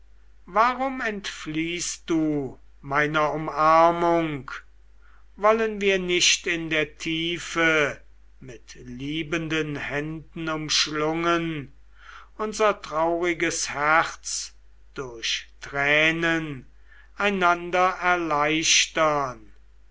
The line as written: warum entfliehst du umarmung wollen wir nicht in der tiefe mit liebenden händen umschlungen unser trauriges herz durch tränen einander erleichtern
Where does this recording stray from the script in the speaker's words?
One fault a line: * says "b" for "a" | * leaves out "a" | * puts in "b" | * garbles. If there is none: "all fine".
* puts in "meiner"